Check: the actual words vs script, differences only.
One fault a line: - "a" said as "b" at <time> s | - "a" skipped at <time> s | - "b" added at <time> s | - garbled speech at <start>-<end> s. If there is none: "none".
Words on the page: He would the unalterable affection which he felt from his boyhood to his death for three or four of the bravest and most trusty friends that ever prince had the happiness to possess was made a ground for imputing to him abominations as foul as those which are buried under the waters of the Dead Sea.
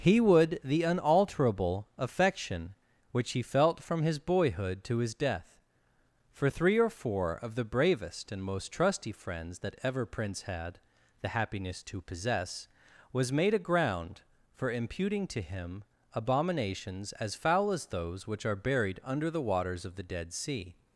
none